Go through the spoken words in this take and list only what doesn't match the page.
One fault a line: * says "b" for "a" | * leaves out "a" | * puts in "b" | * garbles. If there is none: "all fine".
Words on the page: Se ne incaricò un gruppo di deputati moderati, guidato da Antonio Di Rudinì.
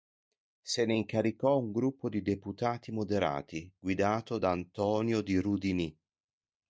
all fine